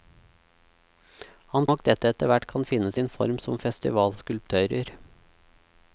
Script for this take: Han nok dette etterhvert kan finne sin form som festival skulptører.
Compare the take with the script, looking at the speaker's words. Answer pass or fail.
pass